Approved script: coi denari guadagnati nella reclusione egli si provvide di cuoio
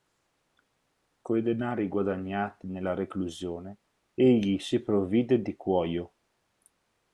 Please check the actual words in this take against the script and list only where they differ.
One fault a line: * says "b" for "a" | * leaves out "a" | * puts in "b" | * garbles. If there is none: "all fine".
all fine